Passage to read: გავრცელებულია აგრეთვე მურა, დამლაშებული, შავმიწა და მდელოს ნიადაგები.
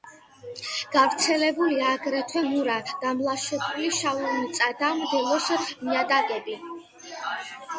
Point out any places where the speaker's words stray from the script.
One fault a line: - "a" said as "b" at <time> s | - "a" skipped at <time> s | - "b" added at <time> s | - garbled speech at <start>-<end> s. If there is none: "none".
none